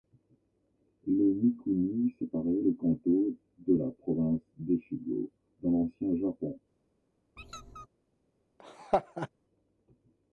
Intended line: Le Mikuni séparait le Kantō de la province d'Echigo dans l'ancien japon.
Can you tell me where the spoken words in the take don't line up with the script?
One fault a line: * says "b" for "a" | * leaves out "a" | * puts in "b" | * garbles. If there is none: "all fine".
all fine